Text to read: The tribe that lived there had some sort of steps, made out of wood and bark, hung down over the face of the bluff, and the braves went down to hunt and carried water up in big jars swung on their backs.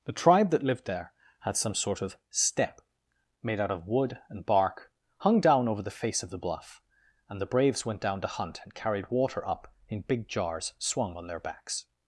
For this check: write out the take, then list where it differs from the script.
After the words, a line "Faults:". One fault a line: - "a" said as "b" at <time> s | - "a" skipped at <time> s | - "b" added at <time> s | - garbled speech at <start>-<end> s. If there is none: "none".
The tribe that lived there had some sort of step, made out of wood and bark, hung down over the face of the bluff, and the braves went down to hunt and carried water up in big jars swung on their backs.
Faults:
- "steps" said as "step" at 2.3 s